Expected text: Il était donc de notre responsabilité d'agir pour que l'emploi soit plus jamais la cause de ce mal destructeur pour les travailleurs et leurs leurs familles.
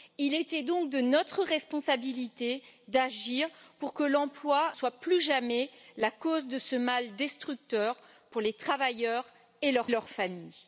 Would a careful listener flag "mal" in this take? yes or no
no